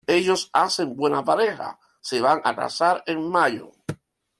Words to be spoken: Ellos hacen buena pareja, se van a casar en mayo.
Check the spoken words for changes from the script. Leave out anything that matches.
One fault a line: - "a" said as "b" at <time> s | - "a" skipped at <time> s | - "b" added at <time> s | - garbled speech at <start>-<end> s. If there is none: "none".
none